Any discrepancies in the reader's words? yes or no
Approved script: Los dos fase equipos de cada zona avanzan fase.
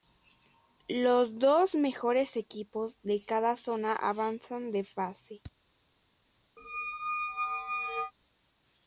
yes